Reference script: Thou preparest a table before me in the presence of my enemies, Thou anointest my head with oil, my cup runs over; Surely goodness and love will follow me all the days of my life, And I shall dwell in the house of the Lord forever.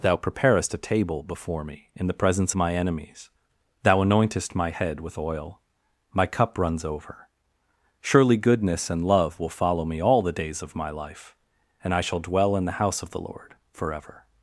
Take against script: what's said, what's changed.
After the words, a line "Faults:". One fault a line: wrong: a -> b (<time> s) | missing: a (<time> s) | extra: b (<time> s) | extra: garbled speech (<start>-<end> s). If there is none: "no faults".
Thou preparest a table before me in the presence my enemies, Thou anointest my head with oil, my cup runs over; Surely goodness and love will follow me all the days of my life, And I shall dwell in the house of the Lord forever.
Faults:
missing: of (2.5 s)